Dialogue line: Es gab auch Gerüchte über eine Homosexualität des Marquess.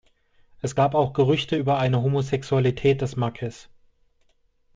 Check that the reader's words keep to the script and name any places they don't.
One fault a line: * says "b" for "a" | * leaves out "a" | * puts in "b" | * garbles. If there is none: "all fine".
all fine